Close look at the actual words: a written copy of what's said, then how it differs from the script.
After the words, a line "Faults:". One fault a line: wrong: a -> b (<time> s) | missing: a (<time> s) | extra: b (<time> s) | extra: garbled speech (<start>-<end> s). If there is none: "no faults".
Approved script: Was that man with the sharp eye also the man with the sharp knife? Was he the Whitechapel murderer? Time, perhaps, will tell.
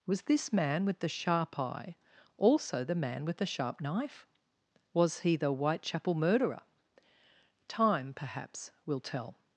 Was this man with the sharp eye also the man with the sharp knife? Was he the Whitechapel murderer? Time, perhaps, will tell.
Faults:
wrong: that -> this (0.2 s)